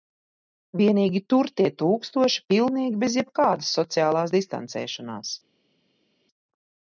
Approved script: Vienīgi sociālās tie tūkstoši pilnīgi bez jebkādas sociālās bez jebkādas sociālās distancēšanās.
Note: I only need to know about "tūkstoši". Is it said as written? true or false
true